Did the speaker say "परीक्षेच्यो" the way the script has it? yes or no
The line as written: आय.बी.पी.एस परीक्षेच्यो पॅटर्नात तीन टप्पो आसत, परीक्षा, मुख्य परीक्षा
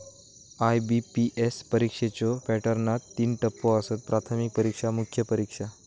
yes